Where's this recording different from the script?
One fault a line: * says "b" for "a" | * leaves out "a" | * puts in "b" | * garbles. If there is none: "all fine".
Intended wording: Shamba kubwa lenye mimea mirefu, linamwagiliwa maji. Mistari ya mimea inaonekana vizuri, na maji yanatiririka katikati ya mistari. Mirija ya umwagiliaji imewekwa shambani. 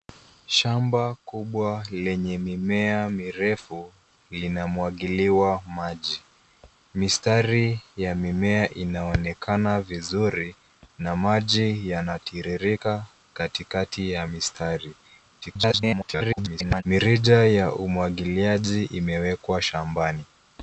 * garbles